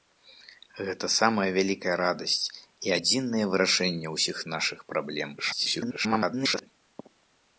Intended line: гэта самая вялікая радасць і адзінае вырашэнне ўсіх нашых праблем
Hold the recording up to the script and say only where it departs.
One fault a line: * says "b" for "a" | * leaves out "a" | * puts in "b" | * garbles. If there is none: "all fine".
* garbles